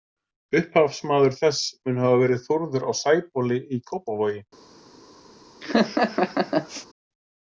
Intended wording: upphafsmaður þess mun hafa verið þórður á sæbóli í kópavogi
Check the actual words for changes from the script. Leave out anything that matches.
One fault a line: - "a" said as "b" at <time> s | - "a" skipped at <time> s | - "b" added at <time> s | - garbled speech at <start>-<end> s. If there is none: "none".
none